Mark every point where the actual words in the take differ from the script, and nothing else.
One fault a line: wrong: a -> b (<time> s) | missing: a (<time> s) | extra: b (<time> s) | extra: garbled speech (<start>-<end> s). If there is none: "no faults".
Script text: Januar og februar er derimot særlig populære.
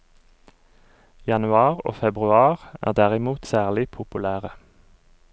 no faults